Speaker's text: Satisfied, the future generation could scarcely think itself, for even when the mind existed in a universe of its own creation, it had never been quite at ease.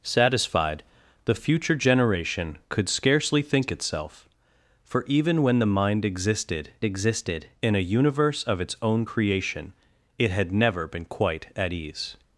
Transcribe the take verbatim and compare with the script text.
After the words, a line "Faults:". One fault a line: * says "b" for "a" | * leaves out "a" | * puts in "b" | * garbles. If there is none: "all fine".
Satisfied, the future generation could scarcely think itself, for even when the mind existed existed in a universe of its own creation, it had never been quite at ease.
Faults:
* puts in "existed"